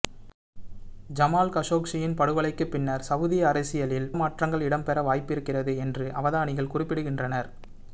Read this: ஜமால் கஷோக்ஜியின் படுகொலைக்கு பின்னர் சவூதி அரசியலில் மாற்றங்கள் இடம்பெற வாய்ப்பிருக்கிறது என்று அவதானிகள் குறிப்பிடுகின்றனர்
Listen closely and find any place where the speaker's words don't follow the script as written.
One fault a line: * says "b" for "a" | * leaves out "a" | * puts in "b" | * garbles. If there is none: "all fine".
all fine